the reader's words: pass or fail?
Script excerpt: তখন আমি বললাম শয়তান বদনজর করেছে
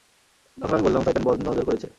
pass